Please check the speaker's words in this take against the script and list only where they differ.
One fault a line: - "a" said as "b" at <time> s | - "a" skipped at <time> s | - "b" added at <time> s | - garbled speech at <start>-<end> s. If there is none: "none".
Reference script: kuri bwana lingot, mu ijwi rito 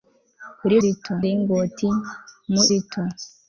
- "bwana" said as "rito" at 0.8 s
- "ijwi" skipped at 2.6 s